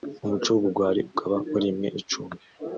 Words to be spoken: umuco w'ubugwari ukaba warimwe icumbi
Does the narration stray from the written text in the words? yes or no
no